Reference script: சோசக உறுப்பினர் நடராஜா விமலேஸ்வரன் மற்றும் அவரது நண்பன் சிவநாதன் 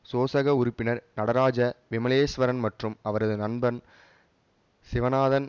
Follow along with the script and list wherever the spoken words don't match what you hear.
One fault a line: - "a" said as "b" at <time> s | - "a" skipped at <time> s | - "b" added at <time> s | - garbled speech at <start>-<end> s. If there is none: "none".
none